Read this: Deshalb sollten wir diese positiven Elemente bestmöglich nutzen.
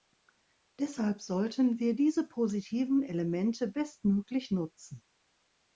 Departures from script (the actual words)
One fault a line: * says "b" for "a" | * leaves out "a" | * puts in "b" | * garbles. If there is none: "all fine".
all fine